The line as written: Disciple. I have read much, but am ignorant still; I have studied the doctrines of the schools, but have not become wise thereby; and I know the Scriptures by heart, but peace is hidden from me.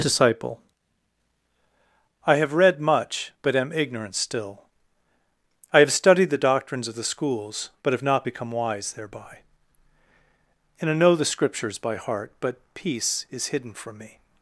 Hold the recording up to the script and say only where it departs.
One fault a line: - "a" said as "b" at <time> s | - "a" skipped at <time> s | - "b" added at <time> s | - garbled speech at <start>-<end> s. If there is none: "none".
none